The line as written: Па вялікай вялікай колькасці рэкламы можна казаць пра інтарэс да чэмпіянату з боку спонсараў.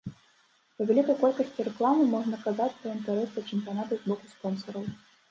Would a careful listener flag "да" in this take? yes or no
no